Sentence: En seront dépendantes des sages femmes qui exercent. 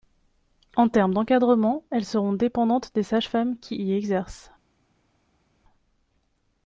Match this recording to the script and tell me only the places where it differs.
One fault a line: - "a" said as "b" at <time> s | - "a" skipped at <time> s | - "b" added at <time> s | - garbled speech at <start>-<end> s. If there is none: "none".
- "termes d'encadrement elles" added at 0.9 s
- "y" added at 3.8 s